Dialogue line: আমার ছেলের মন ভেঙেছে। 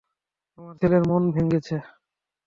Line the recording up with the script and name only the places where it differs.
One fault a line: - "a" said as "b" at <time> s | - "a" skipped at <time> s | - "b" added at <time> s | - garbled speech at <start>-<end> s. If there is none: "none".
none